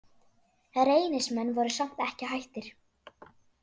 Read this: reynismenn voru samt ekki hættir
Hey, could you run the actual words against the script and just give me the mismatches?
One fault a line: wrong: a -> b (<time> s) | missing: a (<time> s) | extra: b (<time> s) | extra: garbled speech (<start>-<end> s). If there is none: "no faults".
no faults